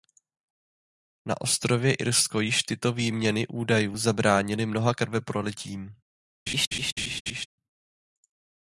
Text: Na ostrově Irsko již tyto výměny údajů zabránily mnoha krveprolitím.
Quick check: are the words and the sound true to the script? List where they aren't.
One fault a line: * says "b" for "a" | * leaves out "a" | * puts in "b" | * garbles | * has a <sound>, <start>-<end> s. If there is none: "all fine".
* has a laugh, 6.5-7.5 s